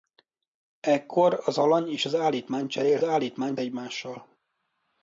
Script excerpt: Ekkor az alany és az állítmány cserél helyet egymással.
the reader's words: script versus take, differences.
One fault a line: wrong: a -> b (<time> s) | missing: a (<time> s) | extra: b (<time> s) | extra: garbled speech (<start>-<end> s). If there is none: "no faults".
wrong: helyet -> állítmány (3.0 s)